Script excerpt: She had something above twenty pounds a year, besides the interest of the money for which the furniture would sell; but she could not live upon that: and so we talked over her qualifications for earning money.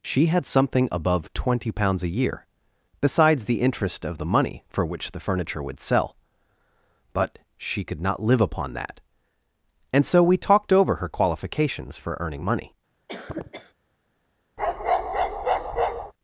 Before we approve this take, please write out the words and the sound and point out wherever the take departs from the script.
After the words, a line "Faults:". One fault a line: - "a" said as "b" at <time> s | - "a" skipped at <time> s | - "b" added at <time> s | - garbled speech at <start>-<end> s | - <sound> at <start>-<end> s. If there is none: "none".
She had something above twenty pounds a year, besides the interest of the money for which the furniture would sell; but she could not live upon that: and so we talked over her qualifications for earning money.
Faults:
- cough at 13.1-13.7 s
- bark at 14.6-16.1 s